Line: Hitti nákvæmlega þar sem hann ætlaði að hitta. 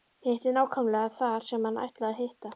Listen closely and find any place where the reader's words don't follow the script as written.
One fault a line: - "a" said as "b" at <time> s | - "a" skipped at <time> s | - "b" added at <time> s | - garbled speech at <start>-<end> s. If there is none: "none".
none